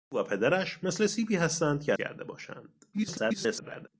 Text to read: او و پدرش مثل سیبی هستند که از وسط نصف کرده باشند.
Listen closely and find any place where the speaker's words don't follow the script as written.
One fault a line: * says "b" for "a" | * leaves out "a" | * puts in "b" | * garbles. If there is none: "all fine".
* leaves out "از وسط نصف"
* garbles